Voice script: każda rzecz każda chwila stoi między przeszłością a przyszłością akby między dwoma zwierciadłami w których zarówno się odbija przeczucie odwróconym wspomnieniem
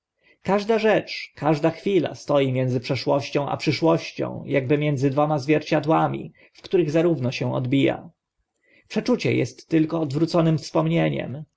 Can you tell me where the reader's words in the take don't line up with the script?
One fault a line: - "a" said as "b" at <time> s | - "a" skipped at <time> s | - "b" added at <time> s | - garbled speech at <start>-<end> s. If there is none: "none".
- "est tylko" added at 9.3 s